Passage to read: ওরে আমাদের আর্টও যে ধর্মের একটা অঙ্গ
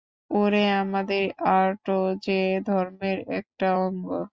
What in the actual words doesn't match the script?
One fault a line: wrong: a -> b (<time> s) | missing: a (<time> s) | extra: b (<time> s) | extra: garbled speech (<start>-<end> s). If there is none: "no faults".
no faults